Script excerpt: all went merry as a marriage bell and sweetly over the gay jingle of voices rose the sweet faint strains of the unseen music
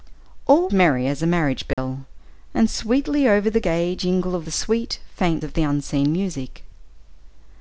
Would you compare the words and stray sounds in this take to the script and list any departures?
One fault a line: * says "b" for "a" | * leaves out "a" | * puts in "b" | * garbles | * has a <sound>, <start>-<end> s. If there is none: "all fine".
* leaves out "went"
* has a dropout, 1.7-1.8 s
* leaves out "voices rose"
* leaves out "strains"